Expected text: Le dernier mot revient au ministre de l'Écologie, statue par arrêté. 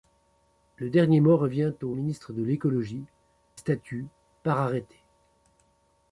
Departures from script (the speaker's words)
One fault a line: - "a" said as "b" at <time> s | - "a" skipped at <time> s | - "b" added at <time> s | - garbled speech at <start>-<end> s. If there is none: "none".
none